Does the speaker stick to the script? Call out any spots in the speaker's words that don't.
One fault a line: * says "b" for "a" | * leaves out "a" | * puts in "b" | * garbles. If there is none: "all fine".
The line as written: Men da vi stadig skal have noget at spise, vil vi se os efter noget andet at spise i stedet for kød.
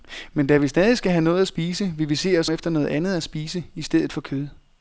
all fine